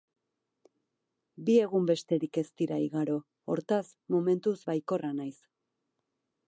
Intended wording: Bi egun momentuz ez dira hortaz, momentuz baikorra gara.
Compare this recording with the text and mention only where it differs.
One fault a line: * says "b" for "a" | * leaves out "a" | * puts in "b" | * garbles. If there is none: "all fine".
* says "besterik" for "momentuz"
* puts in "igaro"
* says "naiz" for "gara"